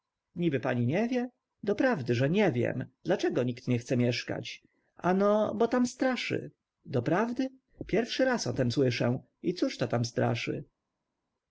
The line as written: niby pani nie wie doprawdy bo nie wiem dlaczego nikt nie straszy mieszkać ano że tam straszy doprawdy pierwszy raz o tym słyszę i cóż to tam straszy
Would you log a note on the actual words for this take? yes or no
yes